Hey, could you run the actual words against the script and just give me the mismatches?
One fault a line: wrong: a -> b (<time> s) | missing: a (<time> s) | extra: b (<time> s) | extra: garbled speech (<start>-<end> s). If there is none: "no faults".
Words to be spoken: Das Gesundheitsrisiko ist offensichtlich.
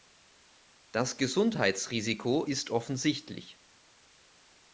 no faults